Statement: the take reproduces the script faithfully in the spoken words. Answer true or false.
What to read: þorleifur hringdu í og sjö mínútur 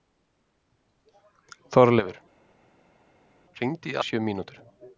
true